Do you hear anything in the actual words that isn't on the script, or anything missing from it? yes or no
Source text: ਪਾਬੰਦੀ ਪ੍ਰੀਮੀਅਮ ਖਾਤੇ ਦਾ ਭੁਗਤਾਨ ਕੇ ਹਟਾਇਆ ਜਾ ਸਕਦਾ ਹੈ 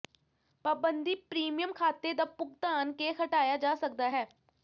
no